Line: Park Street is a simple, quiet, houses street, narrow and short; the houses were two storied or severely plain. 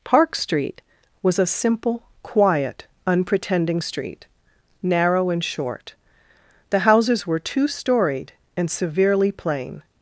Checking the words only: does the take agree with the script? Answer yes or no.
no